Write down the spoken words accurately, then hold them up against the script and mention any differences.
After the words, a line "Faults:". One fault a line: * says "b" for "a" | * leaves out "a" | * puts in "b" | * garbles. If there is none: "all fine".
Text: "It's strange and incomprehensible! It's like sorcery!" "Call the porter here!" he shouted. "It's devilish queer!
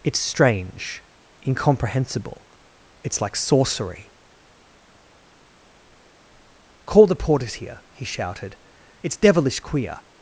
"It's strange incomprehensible! It's like sorcery!" "Call the porters here!" he shouted. "It's devilish queer!
Faults:
* leaves out "and"
* says "porters" for "porter"